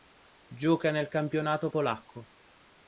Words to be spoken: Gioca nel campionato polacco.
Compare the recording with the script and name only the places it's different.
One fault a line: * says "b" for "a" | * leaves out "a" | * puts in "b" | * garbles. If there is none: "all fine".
all fine